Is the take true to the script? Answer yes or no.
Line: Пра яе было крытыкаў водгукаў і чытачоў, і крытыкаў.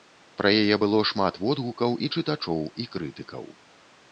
no